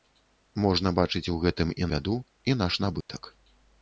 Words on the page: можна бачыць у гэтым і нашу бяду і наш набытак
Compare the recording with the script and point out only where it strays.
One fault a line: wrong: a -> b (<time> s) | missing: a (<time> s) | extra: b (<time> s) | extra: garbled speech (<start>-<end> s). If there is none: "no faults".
missing: нашу (1.9 s)